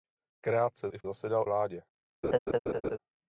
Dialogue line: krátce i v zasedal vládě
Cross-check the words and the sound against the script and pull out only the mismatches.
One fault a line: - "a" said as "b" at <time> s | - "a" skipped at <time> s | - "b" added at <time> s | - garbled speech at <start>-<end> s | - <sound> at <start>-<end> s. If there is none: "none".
- laugh at 2.2-3.0 s